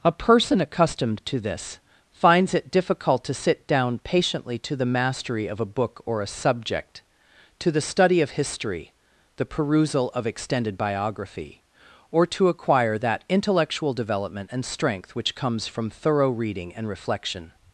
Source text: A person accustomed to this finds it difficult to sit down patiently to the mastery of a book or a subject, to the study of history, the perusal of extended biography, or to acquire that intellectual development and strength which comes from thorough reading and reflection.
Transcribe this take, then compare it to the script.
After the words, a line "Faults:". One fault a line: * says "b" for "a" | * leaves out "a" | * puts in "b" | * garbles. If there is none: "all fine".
A person accustomed to this finds it difficult to sit down patiently to the mastery of a book or a subject, to the study of history, the perusal of extended biography, or to acquire that intellectual development and strength which comes from thorough reading and reflection.
Faults:
all fine